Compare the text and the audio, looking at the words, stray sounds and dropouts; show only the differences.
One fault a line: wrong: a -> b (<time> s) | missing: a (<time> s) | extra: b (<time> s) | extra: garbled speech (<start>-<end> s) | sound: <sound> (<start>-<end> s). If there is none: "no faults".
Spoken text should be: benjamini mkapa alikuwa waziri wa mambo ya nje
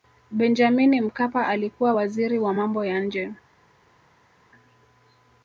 no faults